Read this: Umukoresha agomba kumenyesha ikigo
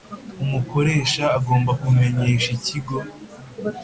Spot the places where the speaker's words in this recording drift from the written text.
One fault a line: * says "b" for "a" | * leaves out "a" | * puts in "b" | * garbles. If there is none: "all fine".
all fine